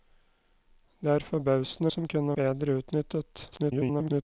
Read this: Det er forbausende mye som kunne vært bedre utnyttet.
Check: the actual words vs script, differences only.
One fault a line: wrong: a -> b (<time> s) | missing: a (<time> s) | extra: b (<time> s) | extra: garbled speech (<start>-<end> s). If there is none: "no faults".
missing: mye (1.9 s)
missing: vært (2.4 s)
extra: garbled speech (3.5-4.2 s)